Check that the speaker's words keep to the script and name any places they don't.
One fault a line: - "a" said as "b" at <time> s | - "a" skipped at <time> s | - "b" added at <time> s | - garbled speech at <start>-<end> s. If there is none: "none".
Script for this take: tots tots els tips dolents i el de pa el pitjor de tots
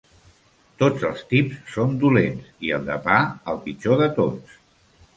- "tots" skipped at 1.0 s
- "són" added at 1.7 s